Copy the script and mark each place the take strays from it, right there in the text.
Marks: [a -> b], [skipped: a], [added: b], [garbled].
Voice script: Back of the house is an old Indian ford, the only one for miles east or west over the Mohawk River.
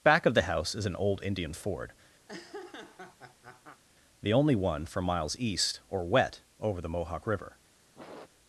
Back of the house is an old Indian ford, the only one for miles east or [west -> wet] over the Mohawk River.